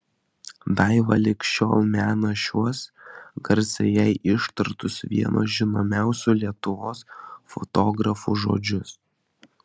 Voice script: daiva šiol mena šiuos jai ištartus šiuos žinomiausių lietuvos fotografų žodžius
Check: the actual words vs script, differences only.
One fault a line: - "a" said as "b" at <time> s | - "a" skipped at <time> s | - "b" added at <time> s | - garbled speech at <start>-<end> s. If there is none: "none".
- "lig" added at 1.2 s
- "garsiai" added at 3.5 s
- "šiuos" said as "vieno" at 5.1 s